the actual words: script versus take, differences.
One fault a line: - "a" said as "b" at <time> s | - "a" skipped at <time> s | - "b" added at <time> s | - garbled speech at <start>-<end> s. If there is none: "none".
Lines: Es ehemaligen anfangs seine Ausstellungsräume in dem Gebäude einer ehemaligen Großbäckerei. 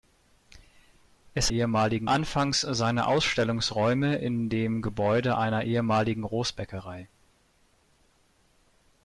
none